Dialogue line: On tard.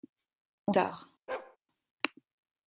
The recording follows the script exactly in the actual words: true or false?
true